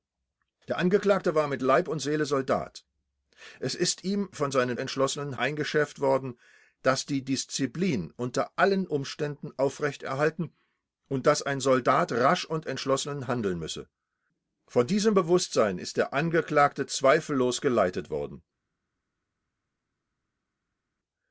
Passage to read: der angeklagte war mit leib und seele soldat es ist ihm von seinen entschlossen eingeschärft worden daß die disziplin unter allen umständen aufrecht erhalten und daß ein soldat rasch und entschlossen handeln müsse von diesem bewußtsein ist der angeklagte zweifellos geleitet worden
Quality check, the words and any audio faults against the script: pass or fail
pass